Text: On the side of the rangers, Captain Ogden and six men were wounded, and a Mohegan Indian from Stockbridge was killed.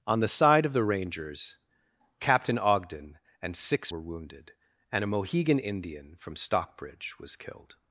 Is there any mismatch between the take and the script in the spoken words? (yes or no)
yes